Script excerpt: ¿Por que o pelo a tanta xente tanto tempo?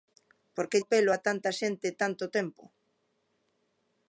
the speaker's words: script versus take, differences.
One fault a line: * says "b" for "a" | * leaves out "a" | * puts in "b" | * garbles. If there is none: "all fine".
all fine